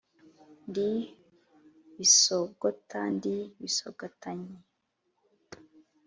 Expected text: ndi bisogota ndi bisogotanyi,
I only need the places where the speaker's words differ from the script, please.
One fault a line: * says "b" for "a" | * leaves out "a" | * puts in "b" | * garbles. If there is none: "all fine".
all fine